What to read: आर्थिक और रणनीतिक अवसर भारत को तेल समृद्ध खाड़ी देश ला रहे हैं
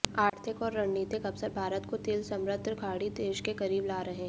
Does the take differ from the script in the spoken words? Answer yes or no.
yes